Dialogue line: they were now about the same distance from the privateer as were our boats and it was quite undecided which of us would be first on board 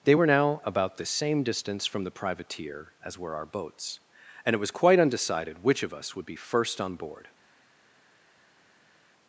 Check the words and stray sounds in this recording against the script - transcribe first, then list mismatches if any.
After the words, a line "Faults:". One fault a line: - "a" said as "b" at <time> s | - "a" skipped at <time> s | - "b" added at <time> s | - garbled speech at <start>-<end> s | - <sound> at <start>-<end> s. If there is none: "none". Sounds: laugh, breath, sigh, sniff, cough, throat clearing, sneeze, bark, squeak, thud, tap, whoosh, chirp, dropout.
they were now about the same distance from the privateer as were our boats and it was quite undecided which of us would be first on board
Faults:
none